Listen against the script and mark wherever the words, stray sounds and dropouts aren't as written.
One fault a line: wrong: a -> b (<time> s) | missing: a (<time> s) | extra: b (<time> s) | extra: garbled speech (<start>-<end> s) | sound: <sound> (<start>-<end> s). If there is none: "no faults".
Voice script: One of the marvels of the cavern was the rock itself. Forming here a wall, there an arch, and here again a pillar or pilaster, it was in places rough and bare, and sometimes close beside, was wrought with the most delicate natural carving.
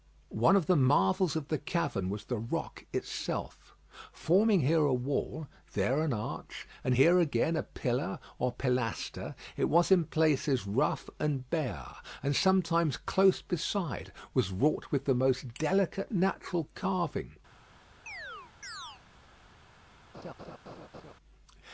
sound: chirp (18.1-19.0 s)
sound: laugh (20.1-21.1 s)